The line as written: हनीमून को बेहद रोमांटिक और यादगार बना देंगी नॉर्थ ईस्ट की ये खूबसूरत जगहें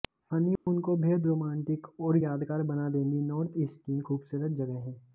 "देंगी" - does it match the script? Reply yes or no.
yes